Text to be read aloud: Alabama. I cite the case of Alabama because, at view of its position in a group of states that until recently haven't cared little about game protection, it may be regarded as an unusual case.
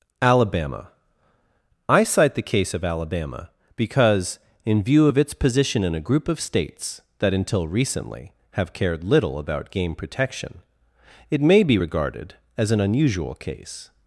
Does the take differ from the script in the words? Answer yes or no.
yes